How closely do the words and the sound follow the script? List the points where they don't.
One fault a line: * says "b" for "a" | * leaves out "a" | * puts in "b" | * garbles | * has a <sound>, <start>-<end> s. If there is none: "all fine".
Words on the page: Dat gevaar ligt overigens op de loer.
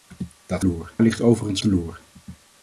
* says "loer" for "gevaar"
* leaves out "op"